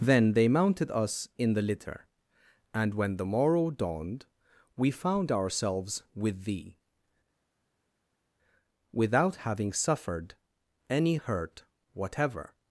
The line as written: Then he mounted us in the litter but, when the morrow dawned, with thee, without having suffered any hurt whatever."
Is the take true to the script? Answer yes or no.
no